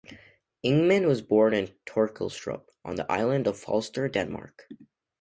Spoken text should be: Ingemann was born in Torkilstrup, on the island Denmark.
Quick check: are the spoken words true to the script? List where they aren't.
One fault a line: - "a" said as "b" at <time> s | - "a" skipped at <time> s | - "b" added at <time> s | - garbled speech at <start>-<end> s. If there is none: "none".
- "of Falster" added at 3.5 s